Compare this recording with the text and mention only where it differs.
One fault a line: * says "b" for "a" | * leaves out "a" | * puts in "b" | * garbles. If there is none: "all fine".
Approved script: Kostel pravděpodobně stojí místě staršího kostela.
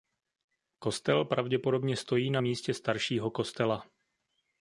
* puts in "na"